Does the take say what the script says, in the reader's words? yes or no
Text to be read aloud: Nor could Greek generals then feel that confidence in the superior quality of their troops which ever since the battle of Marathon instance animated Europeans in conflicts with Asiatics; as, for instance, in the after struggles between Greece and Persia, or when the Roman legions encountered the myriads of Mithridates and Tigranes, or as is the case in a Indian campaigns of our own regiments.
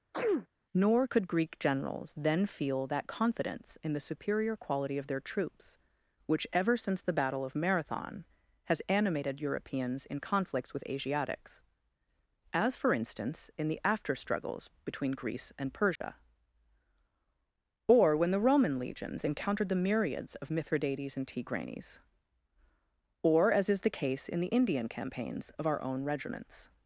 no